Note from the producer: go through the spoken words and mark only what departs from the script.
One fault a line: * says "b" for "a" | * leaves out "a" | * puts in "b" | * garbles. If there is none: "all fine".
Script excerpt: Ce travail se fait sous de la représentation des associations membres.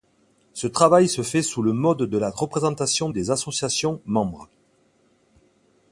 * puts in "le mode"